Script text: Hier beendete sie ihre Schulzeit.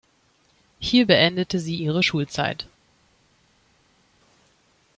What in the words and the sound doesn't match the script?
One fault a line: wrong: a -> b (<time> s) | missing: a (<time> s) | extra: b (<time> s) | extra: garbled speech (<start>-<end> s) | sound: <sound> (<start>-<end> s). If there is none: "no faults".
no faults